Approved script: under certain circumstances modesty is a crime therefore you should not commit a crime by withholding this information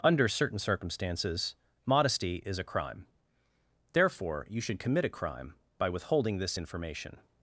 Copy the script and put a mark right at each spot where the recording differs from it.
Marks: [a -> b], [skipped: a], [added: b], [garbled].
under certain circumstances modesty is a crime therefore you should [skipped: not] commit a crime by withholding this information